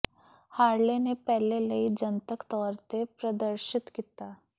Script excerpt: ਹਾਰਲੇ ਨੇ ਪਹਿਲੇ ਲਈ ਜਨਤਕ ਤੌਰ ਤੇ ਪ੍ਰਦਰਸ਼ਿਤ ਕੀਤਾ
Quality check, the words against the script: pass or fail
pass